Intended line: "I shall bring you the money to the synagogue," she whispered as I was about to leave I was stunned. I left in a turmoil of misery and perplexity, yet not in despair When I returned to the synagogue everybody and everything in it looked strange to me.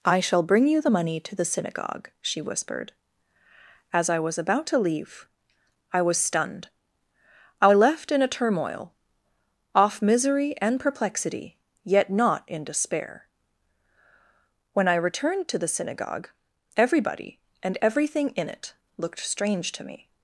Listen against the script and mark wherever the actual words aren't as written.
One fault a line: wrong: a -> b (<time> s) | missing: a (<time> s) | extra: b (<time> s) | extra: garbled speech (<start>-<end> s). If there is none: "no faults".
wrong: of -> off (9.7 s)